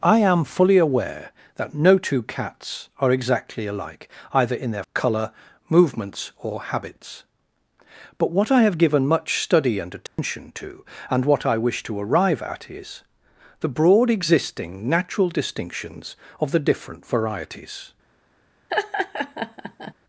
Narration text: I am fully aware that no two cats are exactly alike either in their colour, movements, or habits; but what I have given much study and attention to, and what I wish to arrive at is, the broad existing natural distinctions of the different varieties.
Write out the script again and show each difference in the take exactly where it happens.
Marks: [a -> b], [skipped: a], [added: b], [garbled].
I am fully aware that no two cats are exactly alike either in their colour, movements, or habits; but what I have given much study and attention to, and what I wish to arrive at is, the broad existing natural distinctions of the different varieties.